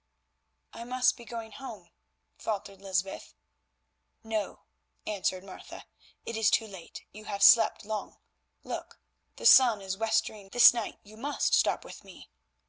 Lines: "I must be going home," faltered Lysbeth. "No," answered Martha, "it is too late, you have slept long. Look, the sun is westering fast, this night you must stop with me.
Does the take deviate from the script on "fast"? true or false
true